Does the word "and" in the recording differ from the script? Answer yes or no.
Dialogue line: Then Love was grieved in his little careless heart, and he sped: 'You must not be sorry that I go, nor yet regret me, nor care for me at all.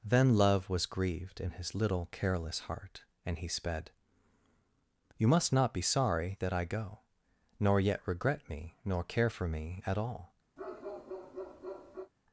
no